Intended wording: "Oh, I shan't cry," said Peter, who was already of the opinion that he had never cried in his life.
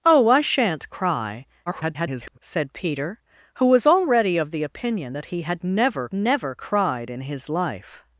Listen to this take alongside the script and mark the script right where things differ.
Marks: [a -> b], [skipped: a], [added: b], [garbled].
"Oh, I shan't cry," [garbled] said Peter, who was already of the opinion that he had never [added: never] cried in his life.